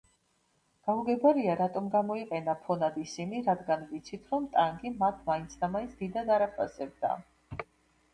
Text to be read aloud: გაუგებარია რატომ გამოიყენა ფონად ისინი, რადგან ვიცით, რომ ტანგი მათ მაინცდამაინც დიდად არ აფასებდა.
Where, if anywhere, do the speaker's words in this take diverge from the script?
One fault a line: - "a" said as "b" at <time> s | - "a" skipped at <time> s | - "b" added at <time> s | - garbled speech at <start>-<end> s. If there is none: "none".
none